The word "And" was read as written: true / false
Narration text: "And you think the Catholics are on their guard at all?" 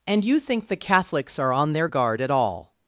true